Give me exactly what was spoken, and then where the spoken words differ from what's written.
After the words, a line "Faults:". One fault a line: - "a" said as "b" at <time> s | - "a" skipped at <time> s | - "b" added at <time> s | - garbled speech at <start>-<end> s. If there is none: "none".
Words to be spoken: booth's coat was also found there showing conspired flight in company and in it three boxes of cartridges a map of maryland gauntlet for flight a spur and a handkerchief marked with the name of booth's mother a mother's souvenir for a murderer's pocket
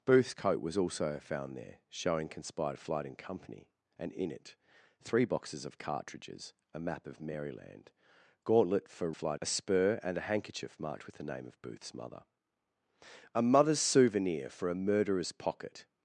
booth's coat was also found there showing conspired flight in company and in it three boxes of cartridges a map of maryland gauntlet for flight a spur and a handkerchief marked with the name of booth's mother a mother's souvenir for a murderer's pocket
Faults:
none